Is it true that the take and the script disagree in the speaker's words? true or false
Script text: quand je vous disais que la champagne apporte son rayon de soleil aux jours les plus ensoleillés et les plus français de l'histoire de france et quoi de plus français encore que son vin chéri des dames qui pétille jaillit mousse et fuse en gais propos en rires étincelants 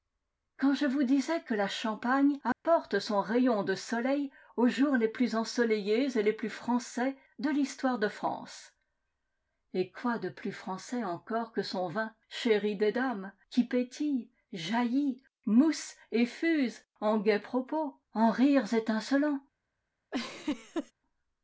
false